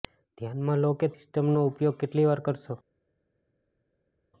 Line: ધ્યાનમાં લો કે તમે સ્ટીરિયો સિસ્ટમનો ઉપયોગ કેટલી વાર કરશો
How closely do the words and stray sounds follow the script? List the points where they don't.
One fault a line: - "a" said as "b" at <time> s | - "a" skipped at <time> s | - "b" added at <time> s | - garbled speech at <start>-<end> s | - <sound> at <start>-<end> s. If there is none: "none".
- "તમે સ્ટીરિયો" skipped at 1.1 s